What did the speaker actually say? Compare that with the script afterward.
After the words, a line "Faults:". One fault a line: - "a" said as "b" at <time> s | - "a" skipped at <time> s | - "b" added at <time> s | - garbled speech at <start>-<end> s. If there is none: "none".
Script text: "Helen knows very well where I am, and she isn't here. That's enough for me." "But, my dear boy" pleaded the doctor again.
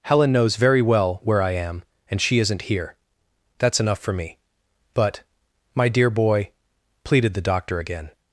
"Helen knows very well where I am, and she isn't here. That's enough for me." "But, my dear boy" pleaded the doctor again.
Faults:
none